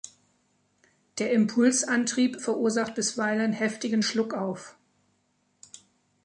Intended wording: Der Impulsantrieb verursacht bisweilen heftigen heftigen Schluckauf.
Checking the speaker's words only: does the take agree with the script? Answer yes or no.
no